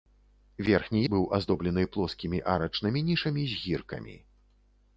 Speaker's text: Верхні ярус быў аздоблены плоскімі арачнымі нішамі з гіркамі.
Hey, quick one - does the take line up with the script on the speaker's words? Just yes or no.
no